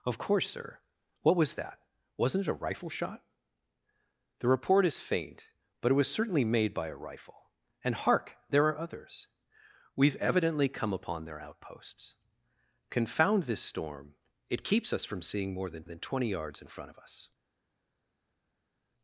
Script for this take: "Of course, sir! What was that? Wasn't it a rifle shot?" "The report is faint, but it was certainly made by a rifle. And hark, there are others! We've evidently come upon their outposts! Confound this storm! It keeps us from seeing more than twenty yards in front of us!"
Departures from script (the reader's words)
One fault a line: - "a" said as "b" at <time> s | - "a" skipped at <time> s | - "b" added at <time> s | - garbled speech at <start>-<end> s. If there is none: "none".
- "than" added at 15.8 s